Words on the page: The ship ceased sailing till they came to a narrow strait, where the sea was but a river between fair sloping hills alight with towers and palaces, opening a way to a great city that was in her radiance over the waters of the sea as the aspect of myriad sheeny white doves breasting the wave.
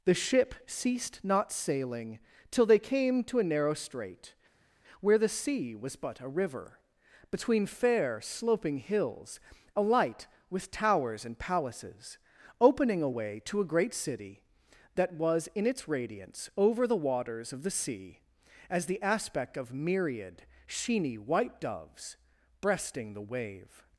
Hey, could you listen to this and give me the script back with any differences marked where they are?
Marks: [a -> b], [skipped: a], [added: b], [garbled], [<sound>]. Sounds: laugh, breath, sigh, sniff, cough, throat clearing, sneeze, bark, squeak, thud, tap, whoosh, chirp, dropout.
The ship ceased [added: not] sailing till they came to a narrow strait, where the sea was but a river between fair sloping hills alight with towers and palaces, opening a way to a great city that was in [her -> its] radiance over the waters of the sea as the aspect of myriad sheeny white doves breasting the wave.